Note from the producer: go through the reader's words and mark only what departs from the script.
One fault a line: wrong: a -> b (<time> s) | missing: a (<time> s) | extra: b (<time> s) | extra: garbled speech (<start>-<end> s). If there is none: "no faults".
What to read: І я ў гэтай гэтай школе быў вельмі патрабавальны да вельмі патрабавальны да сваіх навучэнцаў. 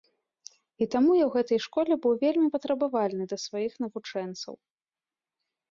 extra: таму (0.9 s)
missing: гэтай (1.6 s)
missing: вельмі патрабавальны да (3.4 s)